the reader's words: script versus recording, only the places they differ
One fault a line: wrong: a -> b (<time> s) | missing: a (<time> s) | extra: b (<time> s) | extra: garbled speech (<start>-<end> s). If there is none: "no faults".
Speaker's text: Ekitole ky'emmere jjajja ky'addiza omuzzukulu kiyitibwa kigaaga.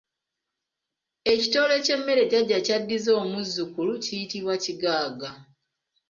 no faults